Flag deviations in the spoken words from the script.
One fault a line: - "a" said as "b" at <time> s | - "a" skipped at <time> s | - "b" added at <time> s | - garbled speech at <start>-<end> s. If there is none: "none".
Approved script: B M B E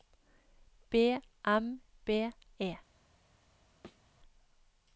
none